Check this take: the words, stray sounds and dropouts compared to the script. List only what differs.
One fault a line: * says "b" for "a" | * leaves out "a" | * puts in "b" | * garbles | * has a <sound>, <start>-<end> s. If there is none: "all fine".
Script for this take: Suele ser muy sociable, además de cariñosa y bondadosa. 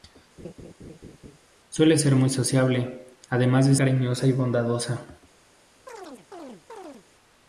* has a laugh, 0.4-1.4 s
* has a chirp, 5.9-7.1 s